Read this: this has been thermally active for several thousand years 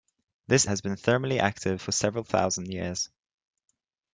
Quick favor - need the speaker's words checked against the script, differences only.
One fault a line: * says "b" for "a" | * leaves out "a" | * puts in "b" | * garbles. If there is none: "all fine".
all fine